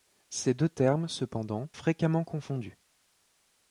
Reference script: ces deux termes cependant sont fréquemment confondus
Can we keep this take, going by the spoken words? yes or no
no